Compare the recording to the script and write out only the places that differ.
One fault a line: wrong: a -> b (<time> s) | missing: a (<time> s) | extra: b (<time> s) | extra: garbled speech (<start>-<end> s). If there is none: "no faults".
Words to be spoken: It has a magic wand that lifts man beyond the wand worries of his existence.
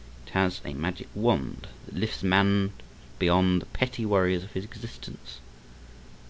wrong: wand -> petty (3.7 s)